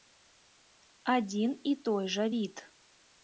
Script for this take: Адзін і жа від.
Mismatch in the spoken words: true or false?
true